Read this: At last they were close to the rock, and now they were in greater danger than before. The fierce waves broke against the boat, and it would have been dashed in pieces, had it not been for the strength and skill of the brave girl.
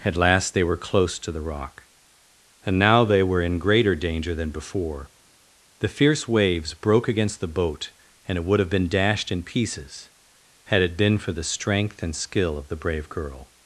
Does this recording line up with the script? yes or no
no